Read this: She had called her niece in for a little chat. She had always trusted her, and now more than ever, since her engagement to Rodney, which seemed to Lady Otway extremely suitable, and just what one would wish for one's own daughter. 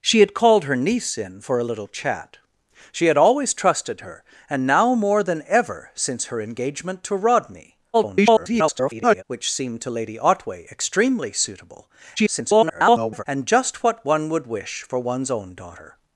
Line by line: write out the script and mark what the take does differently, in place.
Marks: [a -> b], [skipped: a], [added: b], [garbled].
She had called her niece in for a little chat. She had always trusted her, and now more than ever, since her engagement to Rodney, [garbled] which seemed to Lady Otway extremely suitable, [garbled] and just what one would wish for one's own daughter.